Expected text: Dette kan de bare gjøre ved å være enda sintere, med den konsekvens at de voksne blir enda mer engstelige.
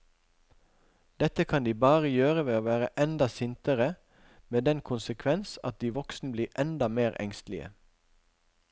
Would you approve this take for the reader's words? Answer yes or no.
yes